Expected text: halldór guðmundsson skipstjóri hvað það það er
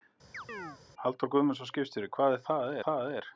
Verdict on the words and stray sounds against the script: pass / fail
fail